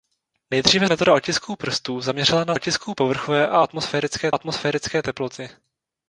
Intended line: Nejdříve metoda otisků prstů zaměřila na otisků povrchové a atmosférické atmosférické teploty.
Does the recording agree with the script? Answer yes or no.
yes